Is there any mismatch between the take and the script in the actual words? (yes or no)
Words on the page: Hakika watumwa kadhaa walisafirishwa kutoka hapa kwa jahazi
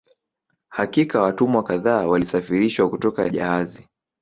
yes